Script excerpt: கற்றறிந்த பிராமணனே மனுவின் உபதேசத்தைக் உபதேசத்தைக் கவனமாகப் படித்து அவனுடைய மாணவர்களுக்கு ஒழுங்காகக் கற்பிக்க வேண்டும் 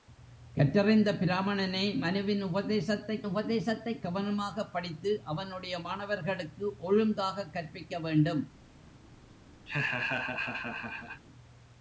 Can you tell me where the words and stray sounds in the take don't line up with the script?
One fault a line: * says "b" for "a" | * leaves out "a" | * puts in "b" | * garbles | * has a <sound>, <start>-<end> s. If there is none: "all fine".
* has a laugh, 9.7-11.2 s